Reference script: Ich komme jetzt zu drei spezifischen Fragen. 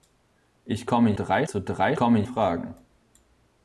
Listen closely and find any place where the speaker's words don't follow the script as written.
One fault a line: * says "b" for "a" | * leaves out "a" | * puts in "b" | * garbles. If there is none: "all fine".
* says "drei" for "jetzt"
* says "komme" for "spezifischen"